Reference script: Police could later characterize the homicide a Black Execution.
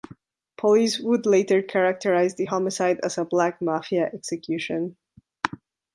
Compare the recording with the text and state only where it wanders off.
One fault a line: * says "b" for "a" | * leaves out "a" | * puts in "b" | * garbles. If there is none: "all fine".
* says "would" for "could"
* puts in "as"
* puts in "Mafia"